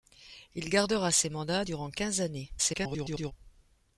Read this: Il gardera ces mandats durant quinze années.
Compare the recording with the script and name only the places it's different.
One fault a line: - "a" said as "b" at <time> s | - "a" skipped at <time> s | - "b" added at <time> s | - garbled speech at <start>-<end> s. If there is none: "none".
- garbled speech at 2.6-3.3 s